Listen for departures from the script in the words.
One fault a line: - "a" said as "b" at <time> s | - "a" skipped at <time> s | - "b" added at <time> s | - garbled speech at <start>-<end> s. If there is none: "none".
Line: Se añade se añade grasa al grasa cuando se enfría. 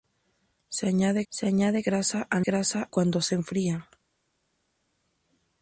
none